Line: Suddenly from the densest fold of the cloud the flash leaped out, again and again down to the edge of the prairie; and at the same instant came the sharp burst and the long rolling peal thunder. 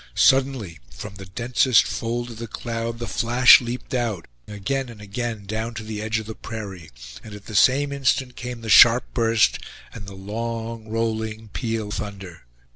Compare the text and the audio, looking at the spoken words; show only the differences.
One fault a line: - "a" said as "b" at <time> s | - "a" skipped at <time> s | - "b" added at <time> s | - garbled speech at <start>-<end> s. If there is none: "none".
none